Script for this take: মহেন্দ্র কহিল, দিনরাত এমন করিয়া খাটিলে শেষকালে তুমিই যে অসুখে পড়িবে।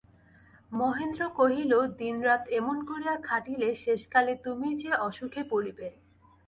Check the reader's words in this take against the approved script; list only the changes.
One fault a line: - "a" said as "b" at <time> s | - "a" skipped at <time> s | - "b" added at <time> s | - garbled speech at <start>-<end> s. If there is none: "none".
none